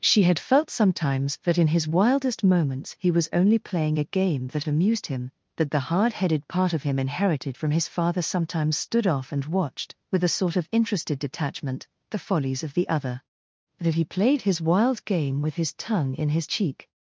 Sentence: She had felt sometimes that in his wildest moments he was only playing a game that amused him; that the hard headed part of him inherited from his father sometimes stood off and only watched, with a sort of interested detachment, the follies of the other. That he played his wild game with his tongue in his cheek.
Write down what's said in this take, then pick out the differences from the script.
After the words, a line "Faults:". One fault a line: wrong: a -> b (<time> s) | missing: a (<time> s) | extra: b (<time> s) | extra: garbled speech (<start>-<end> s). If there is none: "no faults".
She had felt sometimes that in his wildest moments he was only playing a game that amused him; that the hard headed part of him inherited from his father sometimes stood off and watched, with a sort of interested detachment, the follies of the other. That he played his wild game with his tongue in his cheek.
Faults:
missing: only (9.4 s)